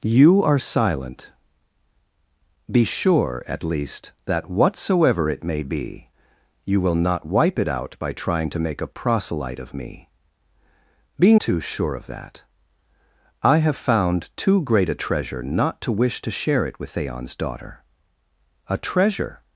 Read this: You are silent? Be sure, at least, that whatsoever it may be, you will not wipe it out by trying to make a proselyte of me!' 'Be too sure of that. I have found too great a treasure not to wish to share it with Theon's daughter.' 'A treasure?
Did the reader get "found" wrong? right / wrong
right